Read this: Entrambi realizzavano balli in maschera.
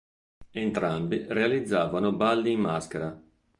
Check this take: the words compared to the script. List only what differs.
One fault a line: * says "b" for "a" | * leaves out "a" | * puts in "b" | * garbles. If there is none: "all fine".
all fine